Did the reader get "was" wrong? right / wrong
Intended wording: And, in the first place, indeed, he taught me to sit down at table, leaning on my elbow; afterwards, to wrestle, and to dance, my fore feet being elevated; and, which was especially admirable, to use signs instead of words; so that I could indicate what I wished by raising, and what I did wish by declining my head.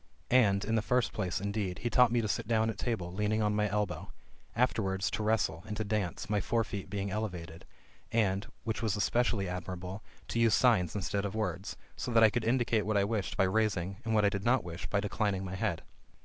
right